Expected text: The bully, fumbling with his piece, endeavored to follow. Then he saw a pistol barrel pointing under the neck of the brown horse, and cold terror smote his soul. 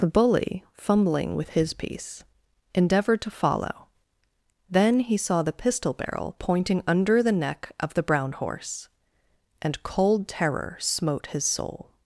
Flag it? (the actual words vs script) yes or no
yes